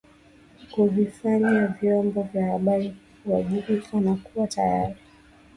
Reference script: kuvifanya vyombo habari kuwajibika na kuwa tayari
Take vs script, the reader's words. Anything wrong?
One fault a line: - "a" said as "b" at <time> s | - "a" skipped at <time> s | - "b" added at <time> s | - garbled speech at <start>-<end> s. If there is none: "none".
- "vya" added at 2.2 s